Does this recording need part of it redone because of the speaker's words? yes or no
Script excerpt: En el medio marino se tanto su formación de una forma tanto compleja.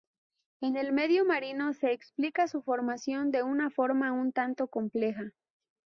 yes